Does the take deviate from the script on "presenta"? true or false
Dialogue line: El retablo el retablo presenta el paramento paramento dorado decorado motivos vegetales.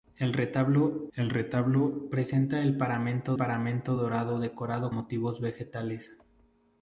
false